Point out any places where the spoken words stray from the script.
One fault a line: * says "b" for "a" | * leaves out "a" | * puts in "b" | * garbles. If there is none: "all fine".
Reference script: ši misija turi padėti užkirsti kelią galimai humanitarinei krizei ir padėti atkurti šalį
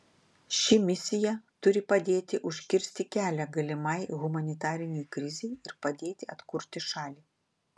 all fine